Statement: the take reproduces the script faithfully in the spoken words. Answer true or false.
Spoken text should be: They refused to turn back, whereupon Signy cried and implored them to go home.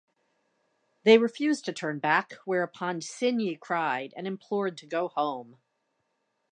false